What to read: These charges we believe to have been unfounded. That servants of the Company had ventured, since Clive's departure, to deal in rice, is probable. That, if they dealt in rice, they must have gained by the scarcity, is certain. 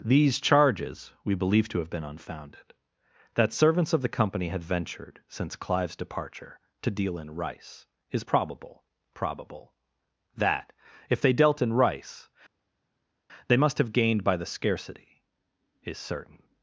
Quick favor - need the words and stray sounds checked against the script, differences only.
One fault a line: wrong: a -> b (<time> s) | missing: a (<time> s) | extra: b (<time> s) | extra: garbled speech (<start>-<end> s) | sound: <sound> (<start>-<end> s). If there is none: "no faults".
extra: probable (9.1 s)